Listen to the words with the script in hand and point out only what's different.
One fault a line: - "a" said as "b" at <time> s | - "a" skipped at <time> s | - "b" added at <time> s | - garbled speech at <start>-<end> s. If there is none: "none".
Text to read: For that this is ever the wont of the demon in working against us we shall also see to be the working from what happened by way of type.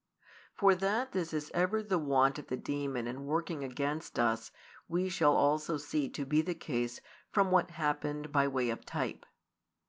- "working" said as "case" at 6.5 s